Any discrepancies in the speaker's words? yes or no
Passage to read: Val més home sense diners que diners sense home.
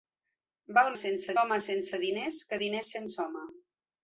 yes